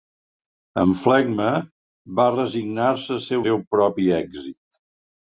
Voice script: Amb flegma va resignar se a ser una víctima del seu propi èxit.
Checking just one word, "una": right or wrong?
wrong